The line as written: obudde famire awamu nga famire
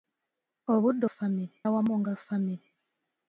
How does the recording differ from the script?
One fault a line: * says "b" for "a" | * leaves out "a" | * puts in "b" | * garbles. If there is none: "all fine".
all fine